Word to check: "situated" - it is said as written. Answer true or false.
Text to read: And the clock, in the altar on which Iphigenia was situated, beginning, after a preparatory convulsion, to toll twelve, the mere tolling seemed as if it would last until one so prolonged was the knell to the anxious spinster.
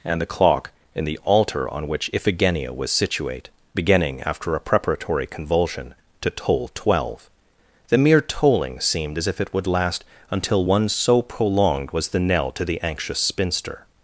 false